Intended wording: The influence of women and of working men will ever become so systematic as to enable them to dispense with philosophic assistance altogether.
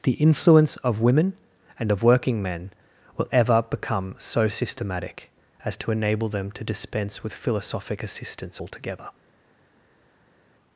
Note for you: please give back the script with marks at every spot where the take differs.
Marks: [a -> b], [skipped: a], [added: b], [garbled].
The influence of women and of working men will ever become so systematic as to enable them to dispense with philosophic assistance altogether.